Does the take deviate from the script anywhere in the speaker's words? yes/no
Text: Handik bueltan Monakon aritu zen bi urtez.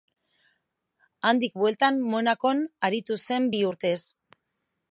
no